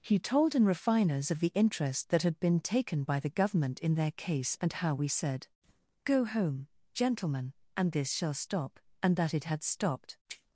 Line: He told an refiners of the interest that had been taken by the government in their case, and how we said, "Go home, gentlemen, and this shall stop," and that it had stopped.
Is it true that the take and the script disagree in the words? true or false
false